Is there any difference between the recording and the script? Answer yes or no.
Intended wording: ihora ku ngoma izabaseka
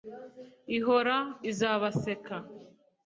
yes